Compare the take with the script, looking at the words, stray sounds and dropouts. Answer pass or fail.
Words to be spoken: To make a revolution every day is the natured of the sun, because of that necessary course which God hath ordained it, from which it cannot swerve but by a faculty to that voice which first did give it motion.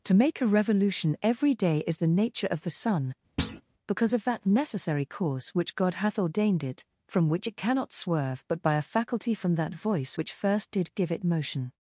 fail